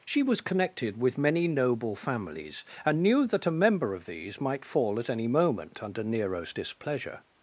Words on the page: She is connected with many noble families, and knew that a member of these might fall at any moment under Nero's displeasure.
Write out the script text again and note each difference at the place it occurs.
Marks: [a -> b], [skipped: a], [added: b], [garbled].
She [is -> was] connected with many noble families, and knew that a member of these might fall at any moment under Nero's displeasure.